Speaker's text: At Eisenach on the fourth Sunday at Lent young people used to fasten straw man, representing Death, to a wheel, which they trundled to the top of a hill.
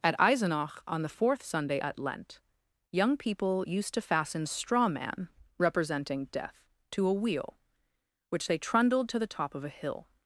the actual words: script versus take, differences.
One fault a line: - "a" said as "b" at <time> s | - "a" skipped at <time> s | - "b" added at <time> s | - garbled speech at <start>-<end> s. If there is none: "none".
none